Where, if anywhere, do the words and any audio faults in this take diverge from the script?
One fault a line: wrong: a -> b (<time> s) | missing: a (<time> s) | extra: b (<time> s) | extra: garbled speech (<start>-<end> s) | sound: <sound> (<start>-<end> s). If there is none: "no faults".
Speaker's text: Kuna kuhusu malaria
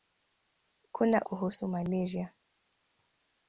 no faults